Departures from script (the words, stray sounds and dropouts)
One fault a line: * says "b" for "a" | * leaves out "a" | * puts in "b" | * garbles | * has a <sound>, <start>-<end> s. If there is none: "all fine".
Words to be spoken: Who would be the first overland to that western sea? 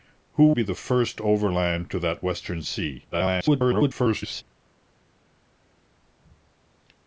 * leaves out "would"
* garbles